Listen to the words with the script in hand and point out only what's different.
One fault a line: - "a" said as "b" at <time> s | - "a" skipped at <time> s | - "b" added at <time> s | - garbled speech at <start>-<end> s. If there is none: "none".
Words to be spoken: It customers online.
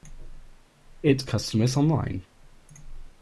none